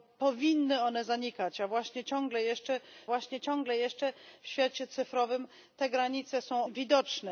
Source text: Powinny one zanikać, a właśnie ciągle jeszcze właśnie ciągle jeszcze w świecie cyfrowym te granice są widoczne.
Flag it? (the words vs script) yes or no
no